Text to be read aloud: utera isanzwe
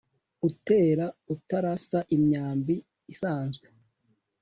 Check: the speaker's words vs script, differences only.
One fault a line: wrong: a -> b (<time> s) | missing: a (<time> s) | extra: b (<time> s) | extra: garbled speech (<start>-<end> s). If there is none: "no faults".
extra: utarasa imyambi (1.3 s)